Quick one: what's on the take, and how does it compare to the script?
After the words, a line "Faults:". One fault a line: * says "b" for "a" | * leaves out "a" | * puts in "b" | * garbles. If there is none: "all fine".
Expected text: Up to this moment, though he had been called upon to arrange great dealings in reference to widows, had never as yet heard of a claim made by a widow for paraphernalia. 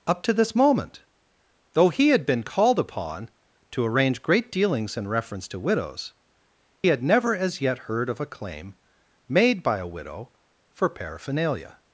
Up to this moment, though he had been called upon to arrange great dealings in reference to widows, had never as yet heard of a claim made by a widow for paraphernalia.
Faults:
all fine